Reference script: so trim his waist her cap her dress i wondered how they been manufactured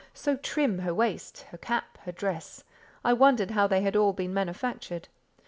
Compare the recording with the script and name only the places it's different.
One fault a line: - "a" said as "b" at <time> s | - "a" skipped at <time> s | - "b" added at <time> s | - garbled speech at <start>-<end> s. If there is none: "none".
- "his" said as "her" at 0.8 s
- "had all" added at 3.8 s